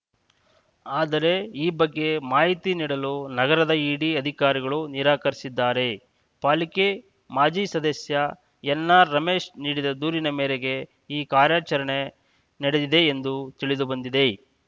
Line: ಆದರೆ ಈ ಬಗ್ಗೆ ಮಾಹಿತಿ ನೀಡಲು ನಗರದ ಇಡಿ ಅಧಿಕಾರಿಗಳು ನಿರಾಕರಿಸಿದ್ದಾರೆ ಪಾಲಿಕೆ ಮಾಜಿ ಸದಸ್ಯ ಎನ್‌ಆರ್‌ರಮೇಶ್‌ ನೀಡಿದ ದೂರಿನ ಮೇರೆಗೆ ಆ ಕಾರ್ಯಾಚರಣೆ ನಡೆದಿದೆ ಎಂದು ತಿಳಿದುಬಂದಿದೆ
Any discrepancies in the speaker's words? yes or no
yes